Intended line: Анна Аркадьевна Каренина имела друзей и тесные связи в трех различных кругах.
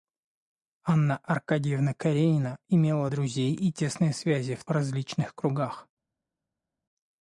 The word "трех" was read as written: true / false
false